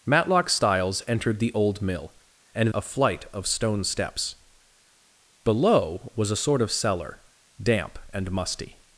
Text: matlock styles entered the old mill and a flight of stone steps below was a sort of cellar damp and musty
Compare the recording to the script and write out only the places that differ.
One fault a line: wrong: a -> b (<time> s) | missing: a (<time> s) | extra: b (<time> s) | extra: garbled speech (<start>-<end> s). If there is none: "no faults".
no faults